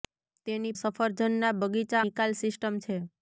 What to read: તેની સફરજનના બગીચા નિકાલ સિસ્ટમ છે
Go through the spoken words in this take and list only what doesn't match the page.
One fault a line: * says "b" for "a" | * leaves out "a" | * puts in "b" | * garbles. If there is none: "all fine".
all fine